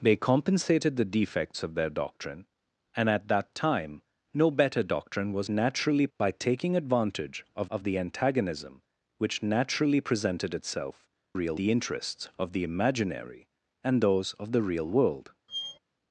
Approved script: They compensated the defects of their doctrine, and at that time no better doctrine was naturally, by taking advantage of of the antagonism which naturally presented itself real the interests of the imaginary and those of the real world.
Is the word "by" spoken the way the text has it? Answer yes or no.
yes